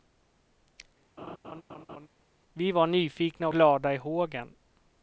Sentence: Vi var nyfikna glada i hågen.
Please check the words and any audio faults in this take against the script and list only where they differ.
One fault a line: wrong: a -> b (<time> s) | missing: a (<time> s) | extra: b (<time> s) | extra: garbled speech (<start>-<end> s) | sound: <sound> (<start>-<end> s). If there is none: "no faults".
sound: laugh (1.2-2.1 s)